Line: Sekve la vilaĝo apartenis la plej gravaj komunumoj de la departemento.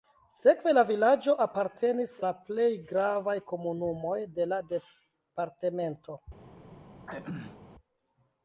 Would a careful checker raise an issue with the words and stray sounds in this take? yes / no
yes